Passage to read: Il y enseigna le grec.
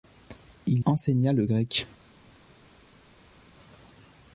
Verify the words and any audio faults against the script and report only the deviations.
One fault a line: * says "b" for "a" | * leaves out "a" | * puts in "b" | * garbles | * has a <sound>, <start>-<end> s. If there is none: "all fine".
* leaves out "y"